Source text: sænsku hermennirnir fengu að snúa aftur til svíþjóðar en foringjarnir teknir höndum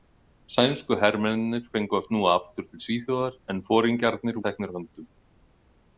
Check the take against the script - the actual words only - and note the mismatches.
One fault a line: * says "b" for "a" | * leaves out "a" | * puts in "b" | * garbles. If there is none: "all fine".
all fine